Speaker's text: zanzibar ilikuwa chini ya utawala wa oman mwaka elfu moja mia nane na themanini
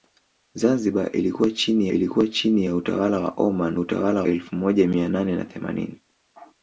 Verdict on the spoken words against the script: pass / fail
fail